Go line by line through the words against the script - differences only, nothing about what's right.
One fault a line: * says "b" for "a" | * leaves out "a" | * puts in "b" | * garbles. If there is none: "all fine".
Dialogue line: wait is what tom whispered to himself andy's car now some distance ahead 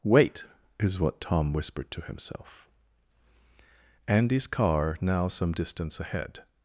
all fine